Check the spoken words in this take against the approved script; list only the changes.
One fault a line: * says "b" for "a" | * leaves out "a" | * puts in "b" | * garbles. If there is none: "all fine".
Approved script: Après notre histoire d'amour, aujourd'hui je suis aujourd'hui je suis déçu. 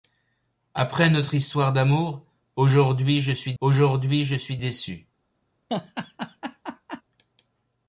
all fine